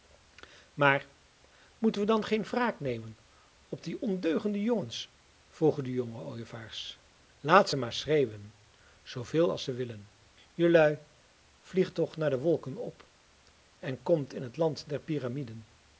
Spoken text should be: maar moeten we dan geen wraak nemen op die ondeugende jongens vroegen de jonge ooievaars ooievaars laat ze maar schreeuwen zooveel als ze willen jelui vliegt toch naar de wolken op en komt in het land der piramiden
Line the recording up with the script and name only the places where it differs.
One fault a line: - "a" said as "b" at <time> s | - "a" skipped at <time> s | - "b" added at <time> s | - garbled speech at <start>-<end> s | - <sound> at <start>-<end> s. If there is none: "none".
- "ooievaars" skipped at 7.0 s